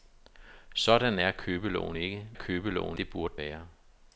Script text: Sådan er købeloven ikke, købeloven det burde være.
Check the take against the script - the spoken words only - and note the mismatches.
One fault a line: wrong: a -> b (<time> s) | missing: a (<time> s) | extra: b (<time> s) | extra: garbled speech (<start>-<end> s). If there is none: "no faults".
no faults